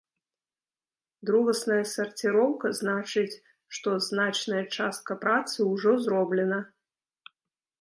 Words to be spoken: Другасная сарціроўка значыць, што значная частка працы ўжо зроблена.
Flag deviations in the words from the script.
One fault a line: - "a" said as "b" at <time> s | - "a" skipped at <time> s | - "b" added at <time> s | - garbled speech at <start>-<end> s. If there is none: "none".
none